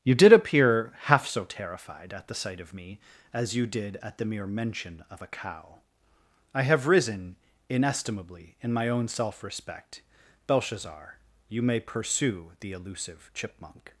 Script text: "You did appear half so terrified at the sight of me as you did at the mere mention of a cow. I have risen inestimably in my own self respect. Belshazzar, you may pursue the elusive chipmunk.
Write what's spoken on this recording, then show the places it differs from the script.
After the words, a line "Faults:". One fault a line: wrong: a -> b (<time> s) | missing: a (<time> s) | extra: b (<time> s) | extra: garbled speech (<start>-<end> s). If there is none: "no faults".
"You did appear half so terrified at the sight of me as you did at the mere mention of a cow. I have risen inestimably in my own self respect. Belshazzar, you may pursue the elusive chipmunk.
Faults:
no faults